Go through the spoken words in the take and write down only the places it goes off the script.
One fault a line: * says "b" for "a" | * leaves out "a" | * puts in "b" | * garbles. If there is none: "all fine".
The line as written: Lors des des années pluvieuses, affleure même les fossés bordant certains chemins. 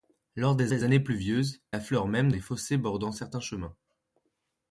all fine